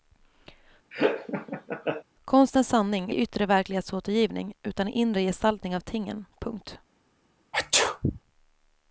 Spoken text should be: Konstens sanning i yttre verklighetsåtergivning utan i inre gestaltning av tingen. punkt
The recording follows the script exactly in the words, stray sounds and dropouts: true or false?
false